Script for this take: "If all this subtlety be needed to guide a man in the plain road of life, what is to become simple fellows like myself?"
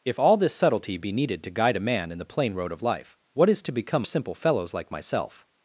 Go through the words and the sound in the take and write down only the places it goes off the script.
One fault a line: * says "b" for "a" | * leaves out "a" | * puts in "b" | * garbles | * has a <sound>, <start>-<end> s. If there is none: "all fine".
all fine